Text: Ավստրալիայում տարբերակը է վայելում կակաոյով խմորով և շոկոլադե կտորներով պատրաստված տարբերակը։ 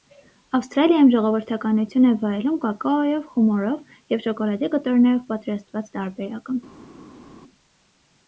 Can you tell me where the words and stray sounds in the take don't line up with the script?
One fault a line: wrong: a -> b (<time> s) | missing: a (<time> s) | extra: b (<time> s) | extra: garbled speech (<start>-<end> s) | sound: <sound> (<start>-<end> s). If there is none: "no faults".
wrong: տարբերակը -> ժողովրդականություն (1.1 s)